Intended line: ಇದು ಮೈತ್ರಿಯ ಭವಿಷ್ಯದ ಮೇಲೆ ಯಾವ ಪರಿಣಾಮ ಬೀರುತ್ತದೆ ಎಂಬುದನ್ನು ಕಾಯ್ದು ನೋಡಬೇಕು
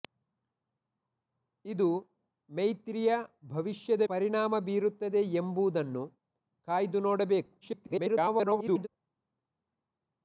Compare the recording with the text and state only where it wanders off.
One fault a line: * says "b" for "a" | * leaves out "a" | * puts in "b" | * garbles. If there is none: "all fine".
* leaves out "ಮೇಲೆ ಯಾವ"
* garbles